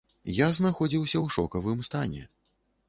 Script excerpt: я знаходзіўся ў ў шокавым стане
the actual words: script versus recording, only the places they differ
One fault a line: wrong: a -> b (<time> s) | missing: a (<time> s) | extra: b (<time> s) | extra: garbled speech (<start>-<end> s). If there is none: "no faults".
missing: ў (1.4 s)